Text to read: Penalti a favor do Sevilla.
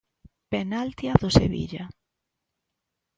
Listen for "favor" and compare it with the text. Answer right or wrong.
wrong